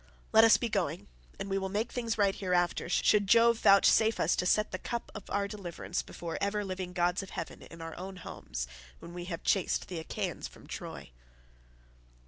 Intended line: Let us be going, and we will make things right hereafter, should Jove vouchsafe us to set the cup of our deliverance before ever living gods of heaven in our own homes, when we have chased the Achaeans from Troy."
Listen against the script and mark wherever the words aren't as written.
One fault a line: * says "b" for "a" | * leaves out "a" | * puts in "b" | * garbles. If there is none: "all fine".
all fine